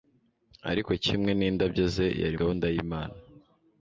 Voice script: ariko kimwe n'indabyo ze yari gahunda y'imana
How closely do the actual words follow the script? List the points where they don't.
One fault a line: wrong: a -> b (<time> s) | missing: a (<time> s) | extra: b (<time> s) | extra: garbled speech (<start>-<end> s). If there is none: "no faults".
no faults